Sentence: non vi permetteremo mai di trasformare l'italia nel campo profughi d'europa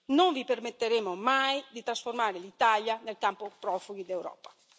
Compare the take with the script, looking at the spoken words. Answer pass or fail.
pass